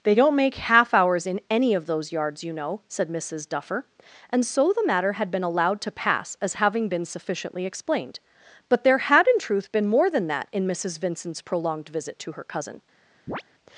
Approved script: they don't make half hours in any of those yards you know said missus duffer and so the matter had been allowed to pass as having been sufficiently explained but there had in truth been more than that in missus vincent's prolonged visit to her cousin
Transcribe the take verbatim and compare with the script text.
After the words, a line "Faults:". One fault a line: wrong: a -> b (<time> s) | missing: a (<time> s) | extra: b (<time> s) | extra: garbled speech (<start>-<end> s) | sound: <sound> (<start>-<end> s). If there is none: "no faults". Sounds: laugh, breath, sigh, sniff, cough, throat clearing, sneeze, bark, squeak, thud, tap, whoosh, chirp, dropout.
they don't make half hours in any of those yards you know said missus duffer and so the matter had been allowed to pass as having been sufficiently explained but there had in truth been more than that in missus vincent's prolonged visit to her cousin
Faults:
sound: chirp (13.3-13.4 s)